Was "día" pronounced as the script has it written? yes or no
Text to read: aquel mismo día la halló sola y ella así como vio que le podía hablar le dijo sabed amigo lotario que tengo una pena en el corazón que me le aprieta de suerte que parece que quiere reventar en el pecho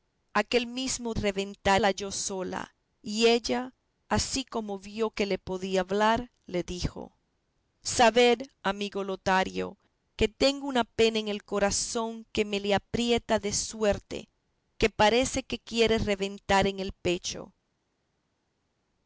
no